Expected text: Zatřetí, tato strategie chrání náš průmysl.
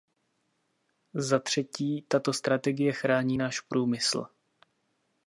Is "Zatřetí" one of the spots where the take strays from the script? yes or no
no